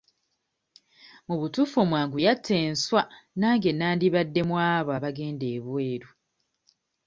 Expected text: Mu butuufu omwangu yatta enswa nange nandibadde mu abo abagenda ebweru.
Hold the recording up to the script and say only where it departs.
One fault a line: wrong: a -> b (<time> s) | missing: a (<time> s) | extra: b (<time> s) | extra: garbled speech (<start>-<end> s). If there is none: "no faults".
no faults